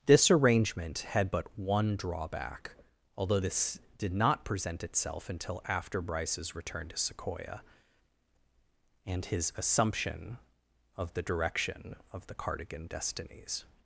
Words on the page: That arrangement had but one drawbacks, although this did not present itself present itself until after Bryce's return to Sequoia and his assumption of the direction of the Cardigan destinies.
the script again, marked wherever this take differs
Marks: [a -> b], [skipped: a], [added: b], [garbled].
[That -> This] arrangement had but one [drawbacks, -> drawback] although this did not present itself [skipped: present itself] until after Bryce's return to Sequoia and his assumption of the direction of the Cardigan destinies.